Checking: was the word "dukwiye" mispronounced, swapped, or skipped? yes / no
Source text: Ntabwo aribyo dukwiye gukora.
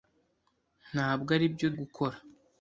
yes